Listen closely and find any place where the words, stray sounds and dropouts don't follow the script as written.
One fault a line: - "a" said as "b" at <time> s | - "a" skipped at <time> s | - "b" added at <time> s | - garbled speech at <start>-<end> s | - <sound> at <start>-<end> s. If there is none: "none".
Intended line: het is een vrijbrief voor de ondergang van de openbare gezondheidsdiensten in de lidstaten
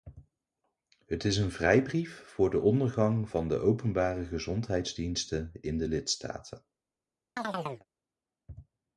- chirp at 7.4-7.9 s